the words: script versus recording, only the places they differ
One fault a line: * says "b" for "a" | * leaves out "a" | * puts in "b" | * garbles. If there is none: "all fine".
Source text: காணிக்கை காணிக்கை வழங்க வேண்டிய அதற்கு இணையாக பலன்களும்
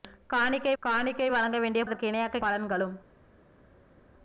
all fine